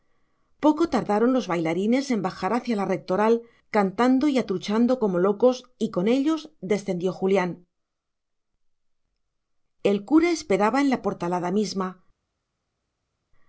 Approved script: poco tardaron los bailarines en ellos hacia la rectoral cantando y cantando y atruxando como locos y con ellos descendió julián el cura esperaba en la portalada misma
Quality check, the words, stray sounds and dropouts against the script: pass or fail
fail